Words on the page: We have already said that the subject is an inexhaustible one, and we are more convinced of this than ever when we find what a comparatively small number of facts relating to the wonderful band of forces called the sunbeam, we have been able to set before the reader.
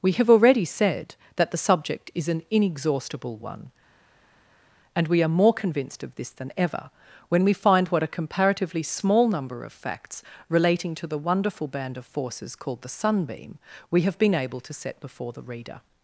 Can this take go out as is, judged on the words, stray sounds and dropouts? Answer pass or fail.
pass